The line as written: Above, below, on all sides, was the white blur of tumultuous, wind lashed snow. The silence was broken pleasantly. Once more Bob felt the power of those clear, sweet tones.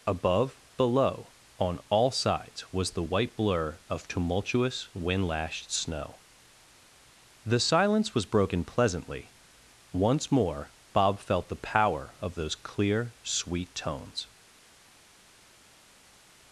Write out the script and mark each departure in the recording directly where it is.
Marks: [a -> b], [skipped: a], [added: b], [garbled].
Above, below, on all sides, was the white blur of tumultuous, wind lashed snow. The silence was broken pleasantly. Once more Bob felt the power of those clear, sweet tones.